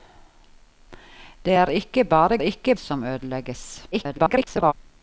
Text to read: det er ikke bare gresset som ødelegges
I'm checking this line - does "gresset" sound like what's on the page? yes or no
no